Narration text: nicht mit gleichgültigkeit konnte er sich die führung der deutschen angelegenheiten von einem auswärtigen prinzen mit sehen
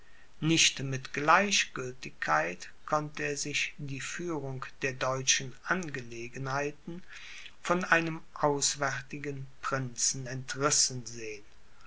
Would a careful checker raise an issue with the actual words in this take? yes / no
yes